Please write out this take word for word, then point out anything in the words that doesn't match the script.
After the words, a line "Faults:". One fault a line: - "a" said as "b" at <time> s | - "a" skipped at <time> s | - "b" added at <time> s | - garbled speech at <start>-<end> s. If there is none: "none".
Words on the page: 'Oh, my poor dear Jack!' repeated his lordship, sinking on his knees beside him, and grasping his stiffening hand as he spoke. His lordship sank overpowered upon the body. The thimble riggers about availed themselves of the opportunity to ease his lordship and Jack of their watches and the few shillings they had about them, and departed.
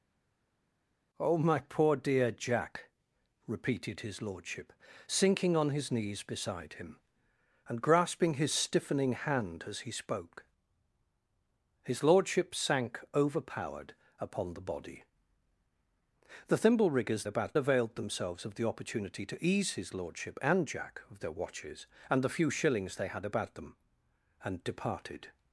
'Oh, my poor dear Jack!' repeated his lordship, sinking on his knees beside him, and grasping his stiffening hand as he spoke. His lordship sank overpowered upon the body. The thimble riggers about availed themselves of the opportunity to ease his lordship and Jack of their watches and the few shillings they had about them, and departed.
Faults:
none